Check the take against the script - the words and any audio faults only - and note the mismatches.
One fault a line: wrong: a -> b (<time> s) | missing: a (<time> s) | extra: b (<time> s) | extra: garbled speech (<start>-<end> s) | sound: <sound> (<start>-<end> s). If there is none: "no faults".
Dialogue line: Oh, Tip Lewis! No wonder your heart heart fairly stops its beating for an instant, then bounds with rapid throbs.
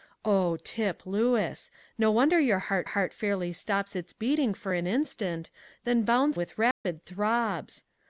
sound: dropout (6.7-6.8 s)